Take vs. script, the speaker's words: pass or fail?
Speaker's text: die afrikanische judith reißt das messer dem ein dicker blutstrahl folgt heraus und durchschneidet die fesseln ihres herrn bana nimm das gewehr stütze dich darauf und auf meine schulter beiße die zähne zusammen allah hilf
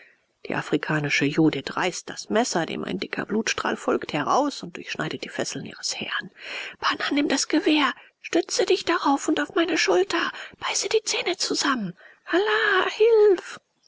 pass